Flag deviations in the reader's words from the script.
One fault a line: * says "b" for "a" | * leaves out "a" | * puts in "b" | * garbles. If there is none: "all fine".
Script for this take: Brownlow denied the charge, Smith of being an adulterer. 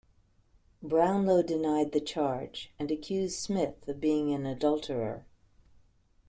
* puts in "and accused"